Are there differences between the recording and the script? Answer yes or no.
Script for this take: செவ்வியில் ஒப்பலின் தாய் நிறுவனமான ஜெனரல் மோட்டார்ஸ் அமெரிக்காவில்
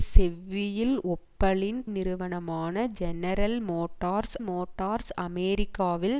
yes